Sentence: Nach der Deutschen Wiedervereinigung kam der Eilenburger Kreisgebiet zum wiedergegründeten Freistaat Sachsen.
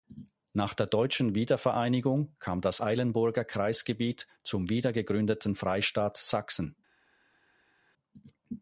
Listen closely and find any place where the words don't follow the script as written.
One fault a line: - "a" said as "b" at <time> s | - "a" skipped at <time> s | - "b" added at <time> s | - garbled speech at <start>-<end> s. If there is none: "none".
- "der" said as "das" at 2.6 s